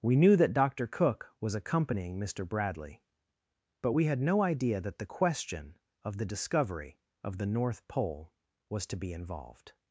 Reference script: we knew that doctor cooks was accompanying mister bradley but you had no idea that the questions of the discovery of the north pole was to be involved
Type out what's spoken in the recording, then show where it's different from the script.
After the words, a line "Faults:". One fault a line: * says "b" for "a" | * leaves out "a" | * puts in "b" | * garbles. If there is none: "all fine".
we knew that doctor cook was accompanying mister bradley but we had no idea that the question of the discovery of the north pole was to be involved
Faults:
* says "cook" for "cooks"
* says "we" for "you"
* says "question" for "questions"